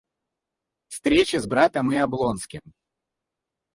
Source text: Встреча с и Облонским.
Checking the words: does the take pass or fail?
fail